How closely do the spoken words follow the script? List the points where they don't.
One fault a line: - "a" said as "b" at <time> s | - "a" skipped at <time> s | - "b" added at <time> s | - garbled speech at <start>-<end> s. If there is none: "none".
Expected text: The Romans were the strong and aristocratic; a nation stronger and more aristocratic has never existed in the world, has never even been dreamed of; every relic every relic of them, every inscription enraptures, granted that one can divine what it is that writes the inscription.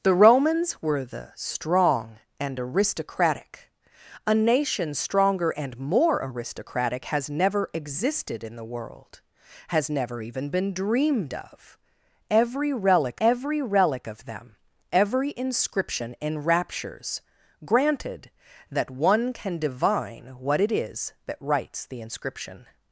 none